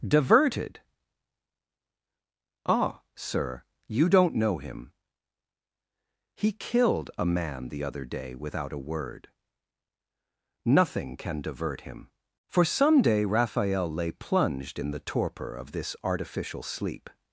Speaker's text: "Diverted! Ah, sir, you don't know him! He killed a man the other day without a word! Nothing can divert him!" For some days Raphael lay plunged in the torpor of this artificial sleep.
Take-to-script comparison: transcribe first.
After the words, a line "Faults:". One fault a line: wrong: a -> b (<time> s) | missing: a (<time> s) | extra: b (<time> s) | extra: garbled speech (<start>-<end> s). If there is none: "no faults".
"Diverted! Ah, sir, you don't know him! He killed a man the other day without a word! Nothing can divert him!" For some day Raphael lay plunged in the torpor of this artificial sleep.
Faults:
wrong: days -> day (13.0 s)